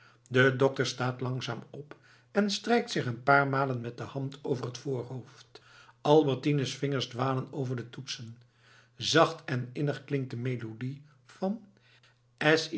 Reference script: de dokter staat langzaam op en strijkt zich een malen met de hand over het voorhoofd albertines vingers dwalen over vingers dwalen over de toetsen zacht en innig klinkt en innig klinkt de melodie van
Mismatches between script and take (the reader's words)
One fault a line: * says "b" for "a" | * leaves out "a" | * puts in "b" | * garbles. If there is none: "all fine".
* puts in "paar"
* leaves out "vingers dwalen over"
* leaves out "en innig klinkt"